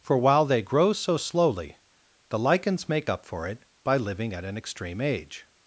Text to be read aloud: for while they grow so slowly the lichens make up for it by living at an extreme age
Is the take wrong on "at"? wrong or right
right